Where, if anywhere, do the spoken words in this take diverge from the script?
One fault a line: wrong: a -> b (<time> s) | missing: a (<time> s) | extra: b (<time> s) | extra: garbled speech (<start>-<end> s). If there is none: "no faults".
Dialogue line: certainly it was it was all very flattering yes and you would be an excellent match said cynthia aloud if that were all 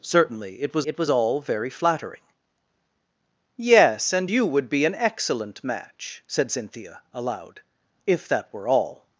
no faults